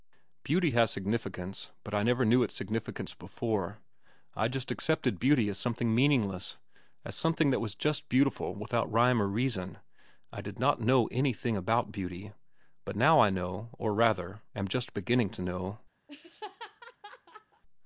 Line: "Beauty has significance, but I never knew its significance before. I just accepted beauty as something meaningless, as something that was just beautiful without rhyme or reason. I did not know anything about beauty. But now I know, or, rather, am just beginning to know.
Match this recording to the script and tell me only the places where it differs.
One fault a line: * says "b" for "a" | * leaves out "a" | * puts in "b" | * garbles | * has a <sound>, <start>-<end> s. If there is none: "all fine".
* has a laugh, 16.1-17.6 s